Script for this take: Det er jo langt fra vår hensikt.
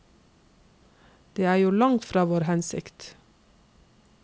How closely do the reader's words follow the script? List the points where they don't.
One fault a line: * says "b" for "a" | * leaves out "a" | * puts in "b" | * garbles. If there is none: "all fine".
all fine